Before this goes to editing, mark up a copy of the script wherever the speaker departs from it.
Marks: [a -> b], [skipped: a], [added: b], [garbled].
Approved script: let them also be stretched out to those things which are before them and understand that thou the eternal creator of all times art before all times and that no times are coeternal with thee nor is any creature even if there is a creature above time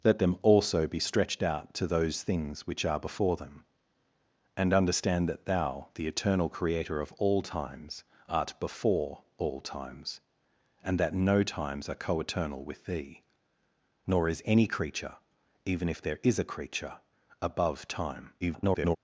let them also be stretched out to those things which are before them and understand that thou the eternal creator of all times art before all times and that no times are coeternal with thee nor is any creature even if there is a creature above time [garbled]